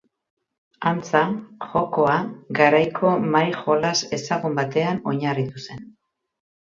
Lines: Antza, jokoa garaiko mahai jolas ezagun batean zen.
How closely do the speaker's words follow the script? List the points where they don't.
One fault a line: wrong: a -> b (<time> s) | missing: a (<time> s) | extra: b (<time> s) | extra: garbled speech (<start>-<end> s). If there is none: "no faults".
extra: oinarritu (5.1 s)